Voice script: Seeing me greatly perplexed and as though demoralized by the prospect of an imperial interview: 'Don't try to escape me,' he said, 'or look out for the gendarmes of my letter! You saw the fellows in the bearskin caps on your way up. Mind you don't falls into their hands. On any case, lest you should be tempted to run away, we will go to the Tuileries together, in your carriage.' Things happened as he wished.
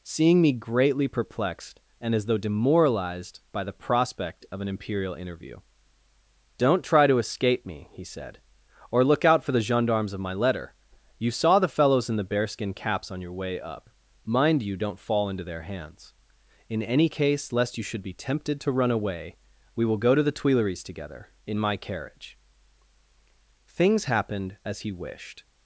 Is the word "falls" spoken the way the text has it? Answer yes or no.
no